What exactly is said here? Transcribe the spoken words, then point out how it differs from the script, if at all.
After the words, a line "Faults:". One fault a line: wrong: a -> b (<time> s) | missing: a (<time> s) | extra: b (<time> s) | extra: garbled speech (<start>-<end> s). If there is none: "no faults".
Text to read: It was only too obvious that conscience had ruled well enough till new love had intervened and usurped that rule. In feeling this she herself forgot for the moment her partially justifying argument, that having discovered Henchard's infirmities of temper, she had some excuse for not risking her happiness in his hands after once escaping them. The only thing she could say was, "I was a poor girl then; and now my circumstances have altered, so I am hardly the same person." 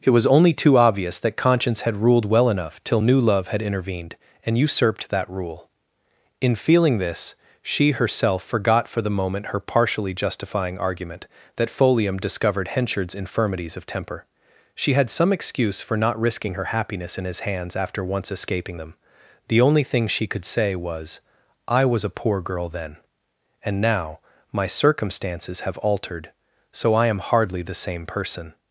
It was only too obvious that conscience had ruled well enough till new love had intervened and usurped that rule. In feeling this she herself forgot for the moment her partially justifying argument, that folium discovered Henchard's infirmities of temper, she had some excuse for not risking her happiness in his hands after once escaping them. The only thing she could say was, "I was a poor girl then; and now my circumstances have altered, so I am hardly the same person."
Faults:
wrong: having -> folium (11.7 s)